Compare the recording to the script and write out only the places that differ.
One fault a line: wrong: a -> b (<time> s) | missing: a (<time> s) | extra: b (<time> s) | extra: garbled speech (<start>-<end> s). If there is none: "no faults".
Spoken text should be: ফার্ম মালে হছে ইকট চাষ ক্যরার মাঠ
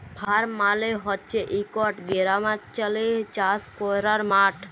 extra: গেরামাল্চলে (2.1 s)